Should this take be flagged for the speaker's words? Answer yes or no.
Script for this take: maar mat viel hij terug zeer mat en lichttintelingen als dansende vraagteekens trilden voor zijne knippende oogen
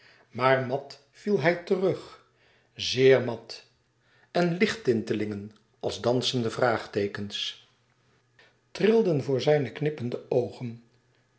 no